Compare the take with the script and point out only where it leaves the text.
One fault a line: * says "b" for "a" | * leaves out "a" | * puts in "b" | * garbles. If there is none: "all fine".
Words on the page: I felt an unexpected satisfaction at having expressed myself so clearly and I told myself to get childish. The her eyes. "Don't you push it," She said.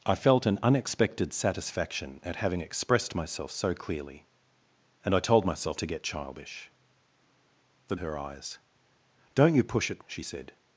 all fine